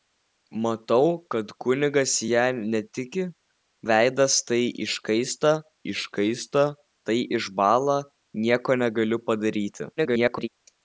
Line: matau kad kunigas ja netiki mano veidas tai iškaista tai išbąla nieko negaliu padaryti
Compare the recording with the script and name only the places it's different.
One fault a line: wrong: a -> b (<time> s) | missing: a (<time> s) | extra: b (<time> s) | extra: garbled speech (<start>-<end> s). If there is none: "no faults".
missing: mano (3.2 s)
extra: iškaista (5.9 s)
extra: garbled speech (10.0-10.5 s)